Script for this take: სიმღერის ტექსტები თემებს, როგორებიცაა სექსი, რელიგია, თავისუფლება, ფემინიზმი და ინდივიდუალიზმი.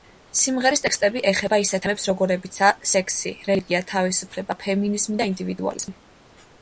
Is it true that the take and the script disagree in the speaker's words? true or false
true